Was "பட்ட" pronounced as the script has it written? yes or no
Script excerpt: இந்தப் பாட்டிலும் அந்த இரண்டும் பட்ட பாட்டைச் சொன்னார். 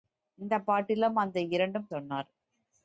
no